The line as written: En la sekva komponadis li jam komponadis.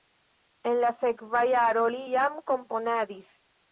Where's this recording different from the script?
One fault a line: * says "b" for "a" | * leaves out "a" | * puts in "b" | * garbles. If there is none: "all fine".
* says "jaro" for "komponadis"